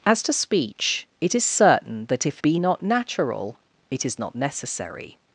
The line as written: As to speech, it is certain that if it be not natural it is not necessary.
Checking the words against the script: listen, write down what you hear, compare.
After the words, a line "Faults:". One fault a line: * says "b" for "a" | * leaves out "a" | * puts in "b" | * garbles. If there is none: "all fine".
As to speech, it is certain that if be not natural it is not necessary.
Faults:
* leaves out "it"